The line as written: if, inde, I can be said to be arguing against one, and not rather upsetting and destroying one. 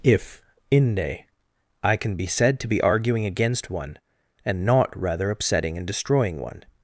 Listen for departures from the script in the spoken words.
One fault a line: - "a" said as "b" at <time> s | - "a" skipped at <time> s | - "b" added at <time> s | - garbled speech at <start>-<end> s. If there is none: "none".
none